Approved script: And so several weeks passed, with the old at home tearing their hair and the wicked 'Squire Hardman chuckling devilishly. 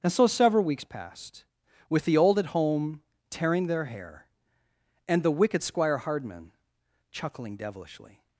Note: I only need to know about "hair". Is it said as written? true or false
true